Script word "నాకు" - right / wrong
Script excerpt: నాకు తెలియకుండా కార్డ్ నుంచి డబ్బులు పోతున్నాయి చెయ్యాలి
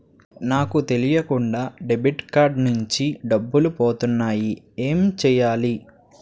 right